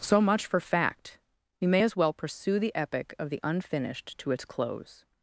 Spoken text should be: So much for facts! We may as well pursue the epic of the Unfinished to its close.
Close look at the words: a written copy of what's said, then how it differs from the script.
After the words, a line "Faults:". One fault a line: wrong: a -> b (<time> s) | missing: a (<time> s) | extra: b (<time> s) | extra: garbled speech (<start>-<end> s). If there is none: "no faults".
So much for fact! We may as well pursue the epic of the Unfinished to its close.
Faults:
wrong: facts -> fact (0.6 s)